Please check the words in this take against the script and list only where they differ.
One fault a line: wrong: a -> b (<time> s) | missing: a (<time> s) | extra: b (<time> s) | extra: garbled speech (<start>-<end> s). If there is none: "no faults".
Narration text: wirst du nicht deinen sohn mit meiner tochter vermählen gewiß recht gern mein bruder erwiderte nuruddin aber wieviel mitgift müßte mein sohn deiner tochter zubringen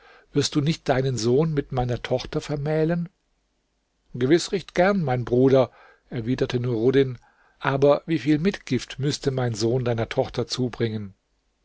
no faults